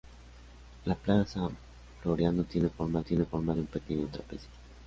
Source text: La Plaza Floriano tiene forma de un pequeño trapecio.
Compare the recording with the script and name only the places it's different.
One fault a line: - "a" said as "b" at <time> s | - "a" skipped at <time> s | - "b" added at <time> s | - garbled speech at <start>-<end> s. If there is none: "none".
- "tiene forma" added at 3.0 s